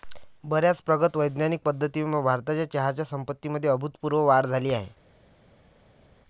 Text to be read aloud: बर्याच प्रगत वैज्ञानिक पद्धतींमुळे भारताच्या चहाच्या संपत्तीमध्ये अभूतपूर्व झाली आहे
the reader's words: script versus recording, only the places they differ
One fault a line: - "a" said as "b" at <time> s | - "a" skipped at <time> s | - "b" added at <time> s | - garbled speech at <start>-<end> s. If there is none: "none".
- "वाढ" added at 4.2 s